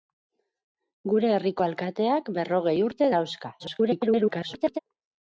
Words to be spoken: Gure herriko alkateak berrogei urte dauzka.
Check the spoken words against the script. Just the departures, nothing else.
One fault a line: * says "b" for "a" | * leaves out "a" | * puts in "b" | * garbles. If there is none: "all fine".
* garbles